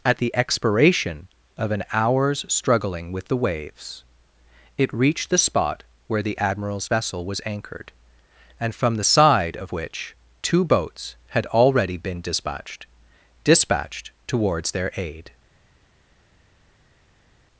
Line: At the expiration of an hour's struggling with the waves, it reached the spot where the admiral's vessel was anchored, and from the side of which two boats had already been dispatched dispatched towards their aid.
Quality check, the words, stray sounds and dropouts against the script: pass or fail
pass